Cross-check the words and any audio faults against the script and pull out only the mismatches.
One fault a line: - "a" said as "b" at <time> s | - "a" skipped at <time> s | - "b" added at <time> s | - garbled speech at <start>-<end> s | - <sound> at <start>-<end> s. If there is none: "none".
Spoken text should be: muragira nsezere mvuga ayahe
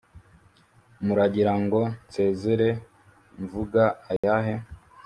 - "ngo" added at 1.6 s
- dropout at 4.2-4.2 s